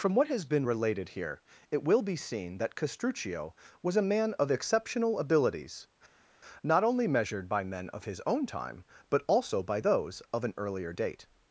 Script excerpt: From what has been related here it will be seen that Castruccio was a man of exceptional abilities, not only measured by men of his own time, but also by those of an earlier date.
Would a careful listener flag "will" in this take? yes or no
no